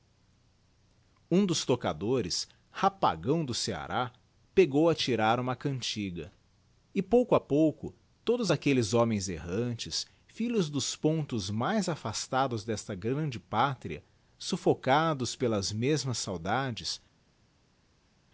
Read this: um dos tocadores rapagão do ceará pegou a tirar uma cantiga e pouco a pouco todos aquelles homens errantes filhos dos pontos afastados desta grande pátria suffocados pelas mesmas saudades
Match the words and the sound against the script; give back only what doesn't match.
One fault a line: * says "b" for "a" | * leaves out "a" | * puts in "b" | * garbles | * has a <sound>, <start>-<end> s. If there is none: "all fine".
* puts in "mais"